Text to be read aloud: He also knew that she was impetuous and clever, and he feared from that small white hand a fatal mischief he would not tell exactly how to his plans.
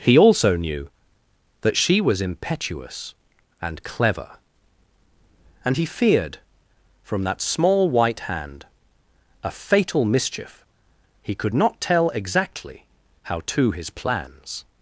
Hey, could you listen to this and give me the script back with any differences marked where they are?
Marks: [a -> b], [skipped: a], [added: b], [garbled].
He also knew that she was impetuous and clever, and he feared from that small white hand a fatal mischief he [would -> could] not tell exactly how to his plans.